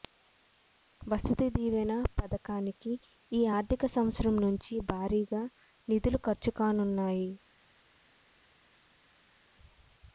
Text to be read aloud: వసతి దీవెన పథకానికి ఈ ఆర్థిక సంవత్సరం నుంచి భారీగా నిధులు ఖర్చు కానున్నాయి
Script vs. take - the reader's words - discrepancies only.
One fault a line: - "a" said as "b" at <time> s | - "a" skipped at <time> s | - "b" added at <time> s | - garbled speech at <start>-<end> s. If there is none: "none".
none